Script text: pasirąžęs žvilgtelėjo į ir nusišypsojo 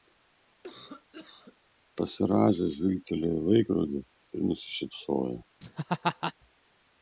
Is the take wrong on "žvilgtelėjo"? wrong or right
right